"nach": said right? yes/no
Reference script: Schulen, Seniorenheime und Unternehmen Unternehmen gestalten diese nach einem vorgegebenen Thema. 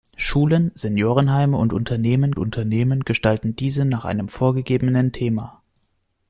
yes